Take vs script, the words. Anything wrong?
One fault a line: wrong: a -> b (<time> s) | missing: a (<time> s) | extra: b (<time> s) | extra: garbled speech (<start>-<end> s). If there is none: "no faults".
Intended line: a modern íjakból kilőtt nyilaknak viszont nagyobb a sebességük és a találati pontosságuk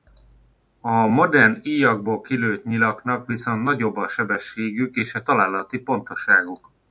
no faults